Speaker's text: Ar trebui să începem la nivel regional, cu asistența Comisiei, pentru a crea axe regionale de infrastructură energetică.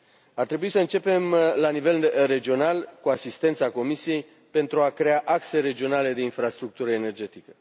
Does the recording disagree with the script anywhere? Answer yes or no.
no